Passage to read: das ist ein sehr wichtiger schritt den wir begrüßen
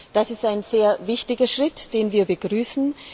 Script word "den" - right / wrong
right